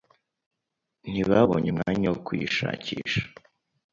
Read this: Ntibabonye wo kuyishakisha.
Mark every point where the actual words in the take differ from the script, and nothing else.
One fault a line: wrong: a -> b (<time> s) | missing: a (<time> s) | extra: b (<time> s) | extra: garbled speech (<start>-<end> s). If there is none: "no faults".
extra: umwanya (1.7 s)